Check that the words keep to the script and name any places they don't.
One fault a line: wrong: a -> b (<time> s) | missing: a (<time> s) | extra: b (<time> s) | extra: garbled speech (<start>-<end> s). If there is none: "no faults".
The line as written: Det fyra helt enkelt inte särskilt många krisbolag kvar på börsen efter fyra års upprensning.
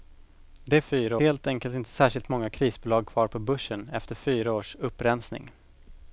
no faults